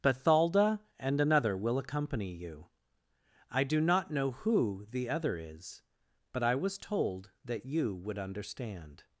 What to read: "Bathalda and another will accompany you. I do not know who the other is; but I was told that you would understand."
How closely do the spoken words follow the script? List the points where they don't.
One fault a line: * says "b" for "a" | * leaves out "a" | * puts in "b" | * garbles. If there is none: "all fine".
all fine